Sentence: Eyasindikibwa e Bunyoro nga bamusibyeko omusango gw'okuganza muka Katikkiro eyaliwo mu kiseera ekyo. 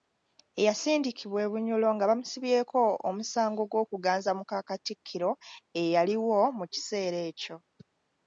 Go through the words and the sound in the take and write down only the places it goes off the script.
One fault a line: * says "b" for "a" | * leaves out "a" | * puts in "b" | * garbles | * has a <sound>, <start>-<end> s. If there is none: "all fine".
all fine